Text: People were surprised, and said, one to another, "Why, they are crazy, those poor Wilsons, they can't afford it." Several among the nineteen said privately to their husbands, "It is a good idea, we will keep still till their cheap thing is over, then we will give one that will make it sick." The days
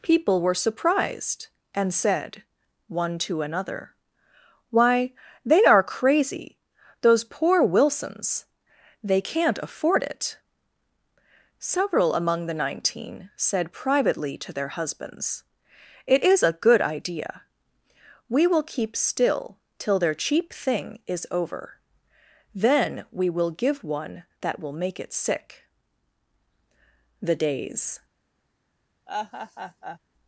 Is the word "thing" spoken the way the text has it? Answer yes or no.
yes